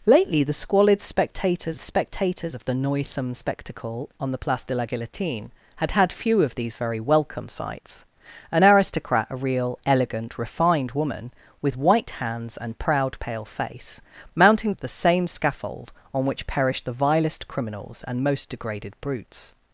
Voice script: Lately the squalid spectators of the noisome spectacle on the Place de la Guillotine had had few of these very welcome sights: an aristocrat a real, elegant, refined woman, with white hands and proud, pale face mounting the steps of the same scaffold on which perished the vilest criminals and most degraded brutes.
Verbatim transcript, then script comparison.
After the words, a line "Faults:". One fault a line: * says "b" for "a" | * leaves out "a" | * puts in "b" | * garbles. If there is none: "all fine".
Lately the squalid spectators spectators of the noisome spectacle on the Place de la Guillotine had had few of these very welcome sights: an aristocrat a real, elegant, refined woman, with white hands and proud, pale face mounting of the same scaffold on which perished the vilest criminals and most degraded brutes.
Faults:
* puts in "spectators"
* leaves out "the steps"